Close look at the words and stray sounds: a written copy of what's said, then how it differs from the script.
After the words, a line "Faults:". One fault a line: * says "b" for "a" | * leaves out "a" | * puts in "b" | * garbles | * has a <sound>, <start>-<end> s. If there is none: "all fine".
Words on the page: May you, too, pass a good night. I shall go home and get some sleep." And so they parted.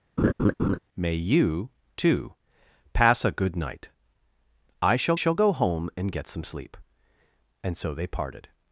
May you, too, pass a good night. I shall shall go home and get some sleep." And so they parted.
Faults:
* has a laugh, 0.2-0.8 s
* puts in "shall"